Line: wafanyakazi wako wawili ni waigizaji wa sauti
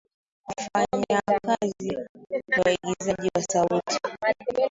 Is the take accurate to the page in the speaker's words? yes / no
no